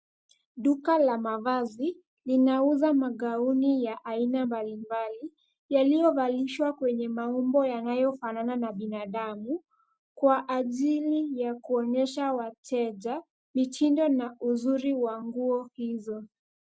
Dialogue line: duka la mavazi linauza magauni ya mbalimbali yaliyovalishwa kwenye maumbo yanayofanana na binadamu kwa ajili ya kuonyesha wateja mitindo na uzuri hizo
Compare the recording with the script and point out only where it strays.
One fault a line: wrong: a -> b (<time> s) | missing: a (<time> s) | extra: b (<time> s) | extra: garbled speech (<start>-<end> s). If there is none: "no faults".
extra: aina (4.0 s)
extra: wa nguo (14.9 s)